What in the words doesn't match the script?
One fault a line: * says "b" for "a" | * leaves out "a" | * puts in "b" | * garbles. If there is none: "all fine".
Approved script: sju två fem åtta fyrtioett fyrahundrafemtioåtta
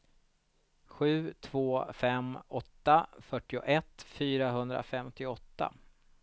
all fine